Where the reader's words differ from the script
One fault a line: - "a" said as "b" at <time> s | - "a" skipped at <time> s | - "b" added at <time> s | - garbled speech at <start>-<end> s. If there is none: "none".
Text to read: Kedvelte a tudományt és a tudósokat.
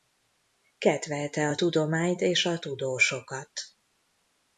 none